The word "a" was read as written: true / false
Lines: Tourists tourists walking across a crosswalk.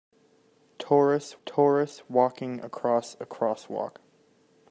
true